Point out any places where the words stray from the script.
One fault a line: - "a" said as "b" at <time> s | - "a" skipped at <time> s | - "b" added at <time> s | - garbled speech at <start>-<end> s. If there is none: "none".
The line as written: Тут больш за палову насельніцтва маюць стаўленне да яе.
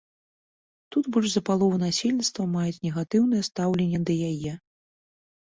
- "негатыўнае" added at 2.9 s